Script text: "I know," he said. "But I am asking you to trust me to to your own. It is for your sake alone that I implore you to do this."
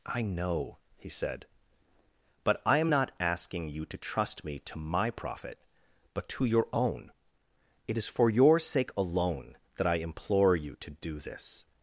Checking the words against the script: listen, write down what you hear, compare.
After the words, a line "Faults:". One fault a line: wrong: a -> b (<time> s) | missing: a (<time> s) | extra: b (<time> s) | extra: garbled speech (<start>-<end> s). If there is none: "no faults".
"I know," he said. "But I am not asking you to trust me to my profit, but to your own. It is for your sake alone that I implore you to do this."
Faults:
extra: not (2.9 s)
extra: my profit but (4.8 s)